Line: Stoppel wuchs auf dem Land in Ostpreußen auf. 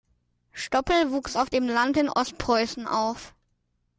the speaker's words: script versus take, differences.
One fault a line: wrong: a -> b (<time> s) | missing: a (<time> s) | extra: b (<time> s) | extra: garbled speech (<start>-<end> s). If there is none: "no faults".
no faults